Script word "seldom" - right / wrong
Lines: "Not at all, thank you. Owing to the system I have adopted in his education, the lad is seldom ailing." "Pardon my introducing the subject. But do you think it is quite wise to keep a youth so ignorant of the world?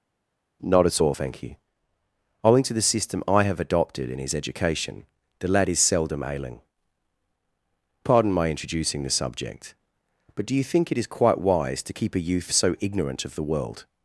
right